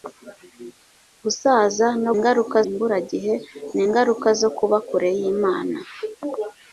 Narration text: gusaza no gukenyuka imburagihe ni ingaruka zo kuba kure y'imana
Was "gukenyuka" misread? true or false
true